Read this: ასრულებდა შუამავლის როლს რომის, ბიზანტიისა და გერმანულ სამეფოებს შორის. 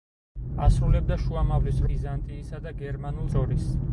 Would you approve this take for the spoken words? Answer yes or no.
no